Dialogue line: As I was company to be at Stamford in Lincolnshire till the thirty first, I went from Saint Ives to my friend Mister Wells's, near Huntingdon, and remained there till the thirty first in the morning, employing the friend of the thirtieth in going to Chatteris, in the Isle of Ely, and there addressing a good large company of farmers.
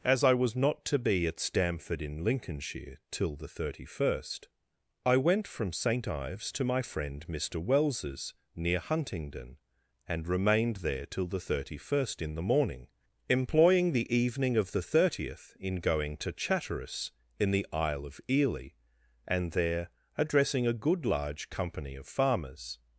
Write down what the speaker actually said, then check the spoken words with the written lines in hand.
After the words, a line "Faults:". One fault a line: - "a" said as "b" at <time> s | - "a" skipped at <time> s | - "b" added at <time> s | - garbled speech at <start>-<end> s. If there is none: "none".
As I was not to be at Stamford in Lincolnshire till the thirty first, I went from Saint Ives to my friend Mister Wells's, near Huntingdon, and remained there till the thirty first in the morning, employing the evening of the thirtieth in going to Chatteris, in the Isle of Ely, and there addressing a good large company of farmers.
Faults:
- "company" said as "not" at 0.6 s
- "friend" said as "evening" at 14.1 s